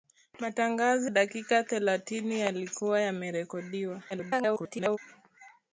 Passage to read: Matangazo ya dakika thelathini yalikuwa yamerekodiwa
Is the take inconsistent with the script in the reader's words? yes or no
yes